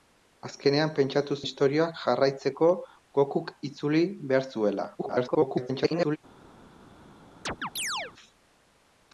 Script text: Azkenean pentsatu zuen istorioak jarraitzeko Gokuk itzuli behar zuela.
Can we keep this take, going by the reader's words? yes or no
no